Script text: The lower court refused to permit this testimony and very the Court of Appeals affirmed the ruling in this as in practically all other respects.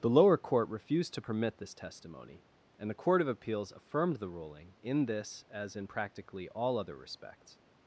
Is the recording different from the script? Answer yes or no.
yes